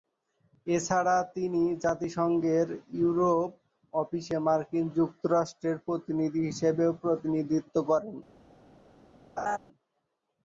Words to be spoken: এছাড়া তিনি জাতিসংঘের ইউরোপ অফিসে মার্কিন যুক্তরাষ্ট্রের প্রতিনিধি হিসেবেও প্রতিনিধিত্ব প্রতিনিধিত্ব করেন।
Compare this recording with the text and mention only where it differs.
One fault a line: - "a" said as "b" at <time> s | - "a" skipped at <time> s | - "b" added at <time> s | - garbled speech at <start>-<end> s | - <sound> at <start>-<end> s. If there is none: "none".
- "প্রতিনিধিত্ব" skipped at 7.8 s
- laugh at 9.4-9.6 s